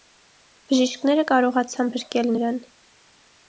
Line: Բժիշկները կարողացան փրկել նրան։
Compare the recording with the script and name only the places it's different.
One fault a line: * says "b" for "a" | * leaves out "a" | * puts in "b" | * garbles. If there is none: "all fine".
all fine